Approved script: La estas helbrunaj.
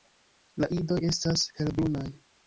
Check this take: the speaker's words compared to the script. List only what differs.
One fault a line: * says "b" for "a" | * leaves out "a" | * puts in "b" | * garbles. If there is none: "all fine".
* puts in "idoj"